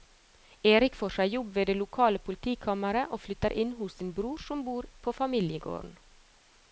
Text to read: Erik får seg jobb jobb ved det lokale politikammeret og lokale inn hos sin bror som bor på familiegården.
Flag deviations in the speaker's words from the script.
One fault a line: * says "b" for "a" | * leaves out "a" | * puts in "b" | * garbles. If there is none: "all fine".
* leaves out "jobb"
* says "flytter" for "lokale"